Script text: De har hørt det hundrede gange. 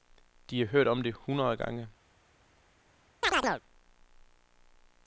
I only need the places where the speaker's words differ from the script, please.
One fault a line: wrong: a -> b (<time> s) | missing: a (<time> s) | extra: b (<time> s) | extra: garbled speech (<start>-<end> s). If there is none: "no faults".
extra: om (0.9 s)